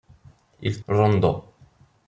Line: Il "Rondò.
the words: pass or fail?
pass